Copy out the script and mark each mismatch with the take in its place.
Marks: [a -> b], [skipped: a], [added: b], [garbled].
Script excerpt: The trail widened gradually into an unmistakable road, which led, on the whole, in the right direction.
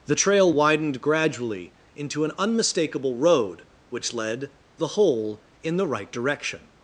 The trail widened gradually into an unmistakable road, which led, [skipped: on] the whole, in the right direction.